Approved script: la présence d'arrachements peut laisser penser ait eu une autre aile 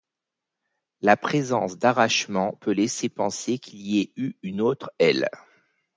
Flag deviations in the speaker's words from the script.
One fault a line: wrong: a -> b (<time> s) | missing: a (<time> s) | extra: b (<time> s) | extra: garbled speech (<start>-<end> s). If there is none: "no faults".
extra: qu'il y (3.6 s)